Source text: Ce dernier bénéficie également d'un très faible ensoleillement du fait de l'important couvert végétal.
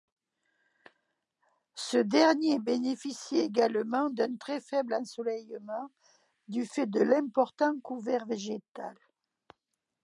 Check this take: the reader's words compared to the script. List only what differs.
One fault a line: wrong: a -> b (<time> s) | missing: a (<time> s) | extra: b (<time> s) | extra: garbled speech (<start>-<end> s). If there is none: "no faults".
no faults